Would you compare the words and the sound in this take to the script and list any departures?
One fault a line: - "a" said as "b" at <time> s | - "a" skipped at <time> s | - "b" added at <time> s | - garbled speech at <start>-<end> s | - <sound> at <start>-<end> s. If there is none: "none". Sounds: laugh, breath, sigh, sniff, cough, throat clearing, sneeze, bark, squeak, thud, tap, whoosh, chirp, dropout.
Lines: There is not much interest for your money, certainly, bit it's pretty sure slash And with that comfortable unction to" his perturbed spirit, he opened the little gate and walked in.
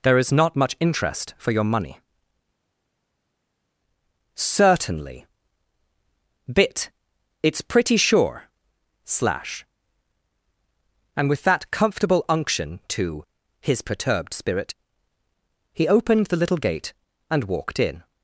none